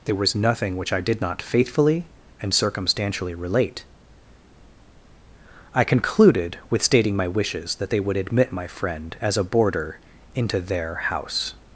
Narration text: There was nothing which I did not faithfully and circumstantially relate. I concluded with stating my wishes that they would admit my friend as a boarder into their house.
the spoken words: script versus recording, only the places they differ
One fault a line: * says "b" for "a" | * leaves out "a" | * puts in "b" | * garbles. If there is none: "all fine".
all fine